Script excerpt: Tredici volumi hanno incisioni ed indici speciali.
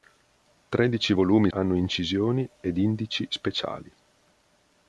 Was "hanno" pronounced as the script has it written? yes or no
yes